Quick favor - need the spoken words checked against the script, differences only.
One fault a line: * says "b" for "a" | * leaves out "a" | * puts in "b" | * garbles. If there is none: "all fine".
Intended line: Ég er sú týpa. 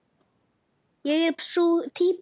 all fine